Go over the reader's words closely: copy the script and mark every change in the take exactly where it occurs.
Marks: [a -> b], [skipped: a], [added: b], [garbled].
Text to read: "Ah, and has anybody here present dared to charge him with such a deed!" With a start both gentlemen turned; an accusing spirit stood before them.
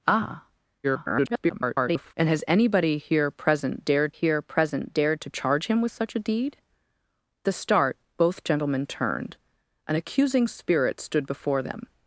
"Ah, [garbled] and has anybody here present dared [added: here present dared] to charge him with such a deed!" [skipped: With] a start both gentlemen turned; an accusing spirit stood before them.